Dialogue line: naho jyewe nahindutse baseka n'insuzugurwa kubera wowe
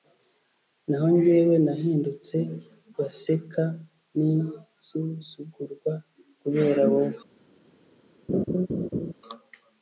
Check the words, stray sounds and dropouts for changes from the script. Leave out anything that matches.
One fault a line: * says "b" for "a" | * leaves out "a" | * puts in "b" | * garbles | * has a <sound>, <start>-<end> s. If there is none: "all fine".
* has a laugh, 8.3-9.1 s